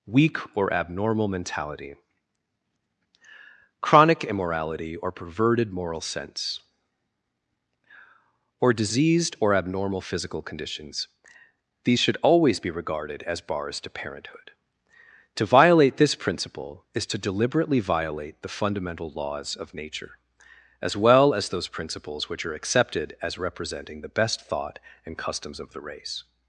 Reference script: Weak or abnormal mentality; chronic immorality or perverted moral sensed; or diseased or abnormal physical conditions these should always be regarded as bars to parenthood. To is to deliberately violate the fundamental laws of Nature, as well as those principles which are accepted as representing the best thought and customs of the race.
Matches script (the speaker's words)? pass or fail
fail